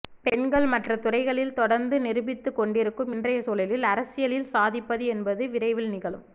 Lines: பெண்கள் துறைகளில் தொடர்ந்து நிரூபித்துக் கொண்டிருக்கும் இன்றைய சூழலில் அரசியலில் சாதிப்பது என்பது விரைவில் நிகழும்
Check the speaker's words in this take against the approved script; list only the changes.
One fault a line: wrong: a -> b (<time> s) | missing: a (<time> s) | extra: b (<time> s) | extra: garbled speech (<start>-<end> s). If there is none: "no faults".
extra: மற்ற (0.7 s)